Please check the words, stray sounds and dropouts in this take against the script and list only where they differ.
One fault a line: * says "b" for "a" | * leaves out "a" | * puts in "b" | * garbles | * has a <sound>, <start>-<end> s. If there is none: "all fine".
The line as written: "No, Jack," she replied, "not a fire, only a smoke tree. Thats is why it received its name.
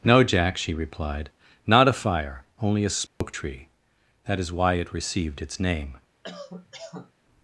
* has a dropout, 3.1-3.2 s
* says "That" for "Thats"
* has a cough, 6.2-7.1 s